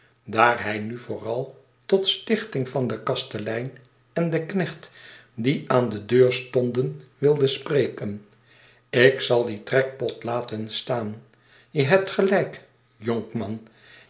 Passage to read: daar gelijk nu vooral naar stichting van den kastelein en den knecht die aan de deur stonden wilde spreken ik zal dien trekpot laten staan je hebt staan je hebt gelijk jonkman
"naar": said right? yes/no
no